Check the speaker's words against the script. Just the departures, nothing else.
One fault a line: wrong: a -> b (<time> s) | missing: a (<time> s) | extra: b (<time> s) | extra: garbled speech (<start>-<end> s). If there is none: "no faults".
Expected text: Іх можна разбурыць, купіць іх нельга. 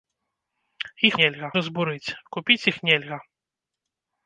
wrong: можна -> нельга (1.2 s)